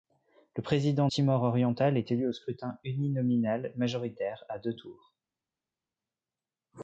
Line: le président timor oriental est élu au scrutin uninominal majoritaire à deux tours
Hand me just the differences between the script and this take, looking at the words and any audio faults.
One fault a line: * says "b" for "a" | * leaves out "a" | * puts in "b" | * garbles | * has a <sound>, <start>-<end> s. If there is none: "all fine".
all fine